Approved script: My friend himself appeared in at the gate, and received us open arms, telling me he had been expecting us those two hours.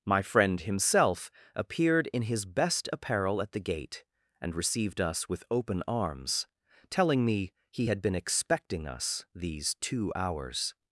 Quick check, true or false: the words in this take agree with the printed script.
false